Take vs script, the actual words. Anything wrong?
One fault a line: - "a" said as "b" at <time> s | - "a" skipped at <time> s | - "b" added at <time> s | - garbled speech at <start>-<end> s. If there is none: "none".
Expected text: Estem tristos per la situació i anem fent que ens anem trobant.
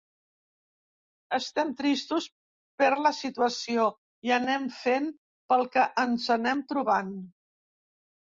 - "pel" added at 5.5 s